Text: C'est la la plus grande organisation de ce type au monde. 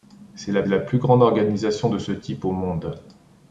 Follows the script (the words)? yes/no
yes